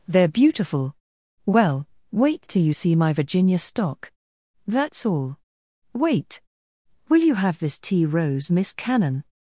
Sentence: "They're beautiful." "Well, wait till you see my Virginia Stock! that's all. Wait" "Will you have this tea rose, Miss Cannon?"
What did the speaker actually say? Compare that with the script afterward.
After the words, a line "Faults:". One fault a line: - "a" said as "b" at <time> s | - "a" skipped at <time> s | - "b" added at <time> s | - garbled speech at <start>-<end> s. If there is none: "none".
"They're beautiful." "Well, wait till you see my Virginia Stock! that's all. Wait" "Will you have this tea rose, Miss Cannon?"
Faults:
none